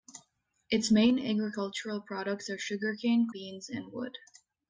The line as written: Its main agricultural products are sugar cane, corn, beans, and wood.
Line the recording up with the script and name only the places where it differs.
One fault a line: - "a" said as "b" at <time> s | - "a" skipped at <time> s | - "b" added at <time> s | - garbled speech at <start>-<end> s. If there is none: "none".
- "corn" skipped at 3.3 s